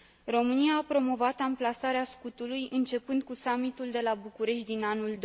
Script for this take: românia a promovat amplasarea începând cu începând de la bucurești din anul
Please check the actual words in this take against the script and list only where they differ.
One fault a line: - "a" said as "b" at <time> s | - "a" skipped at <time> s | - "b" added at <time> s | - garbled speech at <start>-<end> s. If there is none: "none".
- "scutului" added at 2.0 s
- "începând" said as "summitul" at 3.3 s